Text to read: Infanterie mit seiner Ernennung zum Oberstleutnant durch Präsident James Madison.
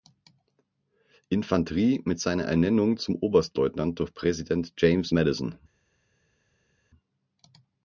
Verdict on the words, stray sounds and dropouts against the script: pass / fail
pass